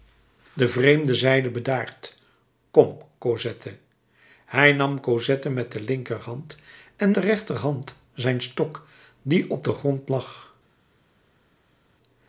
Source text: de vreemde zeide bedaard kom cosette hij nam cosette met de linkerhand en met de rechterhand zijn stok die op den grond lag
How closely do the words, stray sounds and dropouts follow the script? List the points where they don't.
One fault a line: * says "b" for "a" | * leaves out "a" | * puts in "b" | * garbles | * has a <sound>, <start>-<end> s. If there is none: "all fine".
* leaves out "met"